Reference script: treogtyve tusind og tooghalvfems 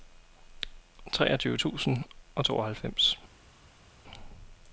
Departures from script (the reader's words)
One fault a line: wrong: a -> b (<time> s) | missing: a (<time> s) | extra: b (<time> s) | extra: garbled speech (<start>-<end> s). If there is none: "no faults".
no faults